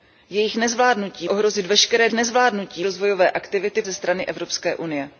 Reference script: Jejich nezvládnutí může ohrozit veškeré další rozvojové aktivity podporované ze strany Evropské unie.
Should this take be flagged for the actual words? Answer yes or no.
yes